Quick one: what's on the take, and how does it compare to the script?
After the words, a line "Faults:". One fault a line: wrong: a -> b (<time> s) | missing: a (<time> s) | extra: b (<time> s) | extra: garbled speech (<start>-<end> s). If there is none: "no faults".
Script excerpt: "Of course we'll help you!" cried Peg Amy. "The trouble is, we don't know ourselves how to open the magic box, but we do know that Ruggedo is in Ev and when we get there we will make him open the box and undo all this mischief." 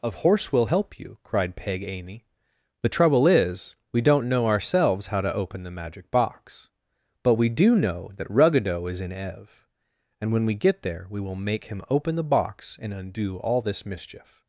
"Of horse we'll help you!" cried Peg Amy. "The trouble is, we don't know ourselves how to open the magic box, but we do know that Ruggedo is in Ev and when we get there we will make him open the box and undo all this mischief."
Faults:
wrong: course -> horse (0.1 s)